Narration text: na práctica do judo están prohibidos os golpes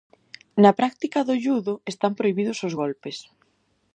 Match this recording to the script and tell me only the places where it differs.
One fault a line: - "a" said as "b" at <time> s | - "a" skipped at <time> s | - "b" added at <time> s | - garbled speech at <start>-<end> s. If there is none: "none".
none